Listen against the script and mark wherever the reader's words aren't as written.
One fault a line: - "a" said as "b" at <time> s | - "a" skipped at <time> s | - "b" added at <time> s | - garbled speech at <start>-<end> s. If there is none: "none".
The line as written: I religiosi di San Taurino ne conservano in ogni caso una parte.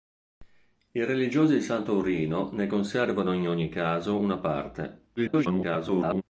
- garbled speech at 5.2-6.2 s